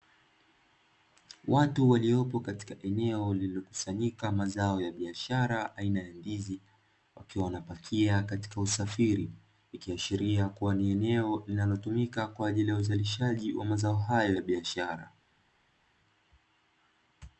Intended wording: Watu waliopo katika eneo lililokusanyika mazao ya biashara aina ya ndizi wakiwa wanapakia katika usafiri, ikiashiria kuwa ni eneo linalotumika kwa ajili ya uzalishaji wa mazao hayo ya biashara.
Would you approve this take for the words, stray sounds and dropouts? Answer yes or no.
yes